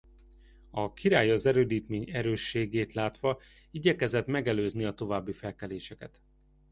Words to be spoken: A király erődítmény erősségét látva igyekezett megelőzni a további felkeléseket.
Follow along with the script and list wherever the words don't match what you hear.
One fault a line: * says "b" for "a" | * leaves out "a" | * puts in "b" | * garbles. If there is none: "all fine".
* puts in "az"